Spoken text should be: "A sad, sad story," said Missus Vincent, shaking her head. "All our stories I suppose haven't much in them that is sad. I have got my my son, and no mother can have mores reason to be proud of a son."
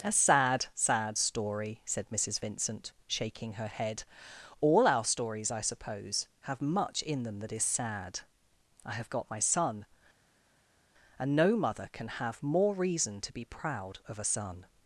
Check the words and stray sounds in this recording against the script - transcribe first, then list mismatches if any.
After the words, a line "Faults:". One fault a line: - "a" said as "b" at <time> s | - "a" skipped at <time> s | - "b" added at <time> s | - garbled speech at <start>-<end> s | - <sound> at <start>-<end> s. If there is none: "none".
"A sad, sad story," said Missus Vincent, shaking her head. "All our stories I suppose have much in them that is sad. I have got my son, and no mother can have more reason to be proud of a son."
Faults:
- "haven't" said as "have" at 6.4 s
- "my" skipped at 9.4 s
- "mores" said as "more" at 12.4 s